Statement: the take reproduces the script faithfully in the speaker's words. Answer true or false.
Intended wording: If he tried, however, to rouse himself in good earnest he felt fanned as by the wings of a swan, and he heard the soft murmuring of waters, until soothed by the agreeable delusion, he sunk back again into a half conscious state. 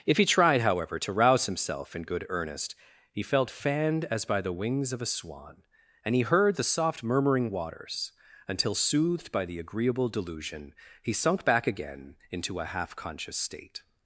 false